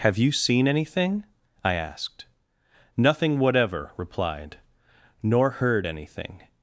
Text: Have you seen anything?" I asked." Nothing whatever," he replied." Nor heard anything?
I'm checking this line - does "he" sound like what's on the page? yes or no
no